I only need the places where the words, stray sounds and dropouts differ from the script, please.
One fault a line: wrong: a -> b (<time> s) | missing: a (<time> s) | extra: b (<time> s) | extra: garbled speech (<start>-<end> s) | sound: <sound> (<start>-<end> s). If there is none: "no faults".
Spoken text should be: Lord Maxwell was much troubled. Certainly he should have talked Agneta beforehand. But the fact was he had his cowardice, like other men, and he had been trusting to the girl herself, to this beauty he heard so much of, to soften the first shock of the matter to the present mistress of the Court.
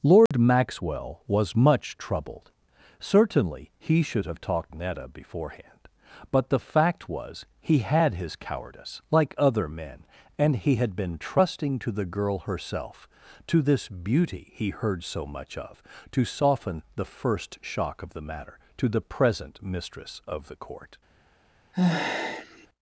sound: dropout (0.3-0.3 s)
sound: sigh (21.7-22.7 s)